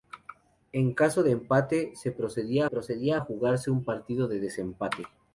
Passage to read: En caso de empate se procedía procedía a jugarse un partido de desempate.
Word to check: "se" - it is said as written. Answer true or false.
true